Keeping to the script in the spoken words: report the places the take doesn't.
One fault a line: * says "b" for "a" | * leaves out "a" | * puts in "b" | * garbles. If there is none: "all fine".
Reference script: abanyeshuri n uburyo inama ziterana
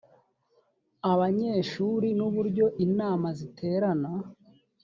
all fine